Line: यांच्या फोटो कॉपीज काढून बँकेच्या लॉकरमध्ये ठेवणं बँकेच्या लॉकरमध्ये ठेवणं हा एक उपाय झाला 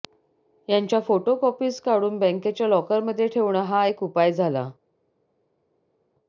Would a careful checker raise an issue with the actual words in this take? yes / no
yes